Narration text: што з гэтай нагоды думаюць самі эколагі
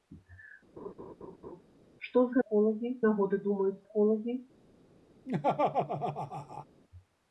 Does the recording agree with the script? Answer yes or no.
no